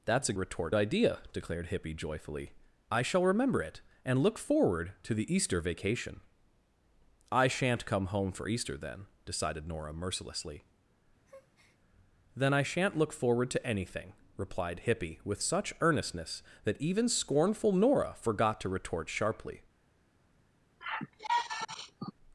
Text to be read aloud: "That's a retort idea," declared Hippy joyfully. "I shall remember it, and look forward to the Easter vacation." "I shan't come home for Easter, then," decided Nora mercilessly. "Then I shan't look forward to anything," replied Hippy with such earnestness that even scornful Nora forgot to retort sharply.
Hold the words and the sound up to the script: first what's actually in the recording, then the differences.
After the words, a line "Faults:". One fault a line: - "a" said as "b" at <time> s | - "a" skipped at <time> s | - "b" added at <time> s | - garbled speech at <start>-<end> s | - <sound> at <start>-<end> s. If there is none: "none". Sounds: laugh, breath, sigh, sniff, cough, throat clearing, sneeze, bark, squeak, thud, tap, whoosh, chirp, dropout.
"That's a retort idea," declared Hippy joyfully. "I shall remember it, and look forward to the Easter vacation." "I shan't come home for Easter, then," decided Nora mercilessly. "Then I shan't look forward to anything," replied Hippy with such earnestness that even scornful Nora forgot to retort sharply.
Faults:
- breath at 11.3-11.8 s
- sigh at 20.8-22.1 s